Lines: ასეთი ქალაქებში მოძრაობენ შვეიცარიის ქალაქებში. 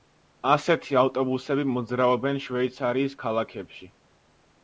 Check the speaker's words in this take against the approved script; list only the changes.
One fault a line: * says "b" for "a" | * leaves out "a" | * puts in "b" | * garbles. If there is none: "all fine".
* says "ავტობუსები" for "ქალაქებში"